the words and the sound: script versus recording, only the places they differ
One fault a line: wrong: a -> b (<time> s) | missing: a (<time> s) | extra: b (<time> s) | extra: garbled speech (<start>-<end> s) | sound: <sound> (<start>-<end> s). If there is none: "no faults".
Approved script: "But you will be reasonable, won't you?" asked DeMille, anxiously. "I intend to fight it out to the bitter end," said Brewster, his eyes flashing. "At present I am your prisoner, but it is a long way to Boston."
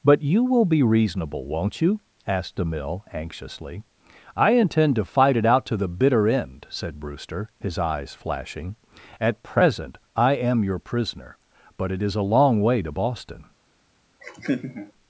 sound: laugh (14.2-14.9 s)